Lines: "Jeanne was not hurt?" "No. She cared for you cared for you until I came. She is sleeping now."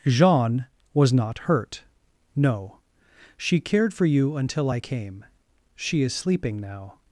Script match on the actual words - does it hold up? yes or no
no